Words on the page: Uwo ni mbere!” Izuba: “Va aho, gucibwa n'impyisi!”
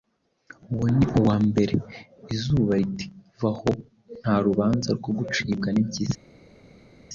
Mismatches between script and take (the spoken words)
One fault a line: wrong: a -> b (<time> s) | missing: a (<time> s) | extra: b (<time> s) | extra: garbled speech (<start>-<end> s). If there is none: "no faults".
extra: uwa (1.2 s)
extra: riti (2.8 s)
extra: nta rubanza rwo (4.2 s)